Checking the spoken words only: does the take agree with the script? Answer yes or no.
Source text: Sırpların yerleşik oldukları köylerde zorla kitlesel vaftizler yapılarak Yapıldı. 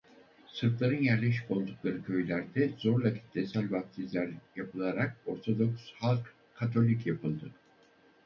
no